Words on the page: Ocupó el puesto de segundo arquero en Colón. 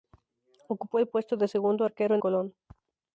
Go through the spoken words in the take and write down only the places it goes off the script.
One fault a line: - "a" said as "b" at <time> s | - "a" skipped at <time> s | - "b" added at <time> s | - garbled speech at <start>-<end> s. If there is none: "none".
none